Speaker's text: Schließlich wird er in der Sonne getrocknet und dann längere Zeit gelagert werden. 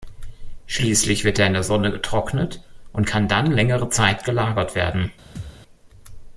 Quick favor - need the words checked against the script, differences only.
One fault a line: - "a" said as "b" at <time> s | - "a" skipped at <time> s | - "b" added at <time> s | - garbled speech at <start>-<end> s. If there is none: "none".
- "kann" added at 3.0 s